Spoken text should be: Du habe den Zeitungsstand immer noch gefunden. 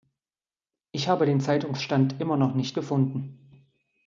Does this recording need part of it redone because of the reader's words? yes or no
yes